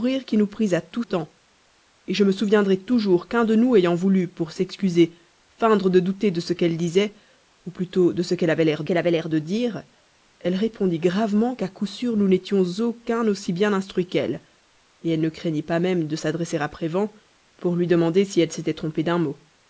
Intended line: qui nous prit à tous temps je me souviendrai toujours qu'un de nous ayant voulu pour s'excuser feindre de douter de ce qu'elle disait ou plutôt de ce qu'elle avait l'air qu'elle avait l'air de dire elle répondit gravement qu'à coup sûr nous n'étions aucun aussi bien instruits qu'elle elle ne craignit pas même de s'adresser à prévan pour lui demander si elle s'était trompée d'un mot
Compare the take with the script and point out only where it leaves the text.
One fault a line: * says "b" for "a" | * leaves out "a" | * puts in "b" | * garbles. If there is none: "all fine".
all fine